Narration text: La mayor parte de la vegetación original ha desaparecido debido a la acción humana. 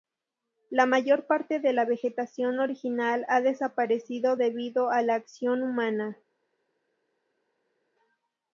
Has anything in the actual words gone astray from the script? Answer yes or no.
no